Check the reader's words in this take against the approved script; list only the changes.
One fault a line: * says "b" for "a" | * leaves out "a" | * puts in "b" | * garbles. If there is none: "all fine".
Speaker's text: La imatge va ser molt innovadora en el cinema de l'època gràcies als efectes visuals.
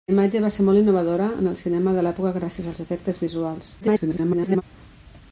* garbles